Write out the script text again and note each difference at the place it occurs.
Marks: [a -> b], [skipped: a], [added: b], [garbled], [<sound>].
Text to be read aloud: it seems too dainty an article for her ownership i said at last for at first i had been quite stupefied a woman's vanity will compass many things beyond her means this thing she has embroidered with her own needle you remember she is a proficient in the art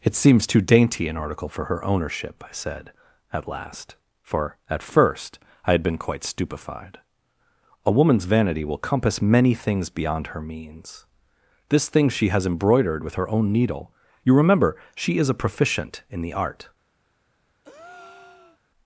it seems too dainty an article for her ownership i said at last for at first i had been quite stupefied a woman's vanity will compass many things beyond her means this thing she has embroidered with her own needle you remember she is a proficient in the art [breath]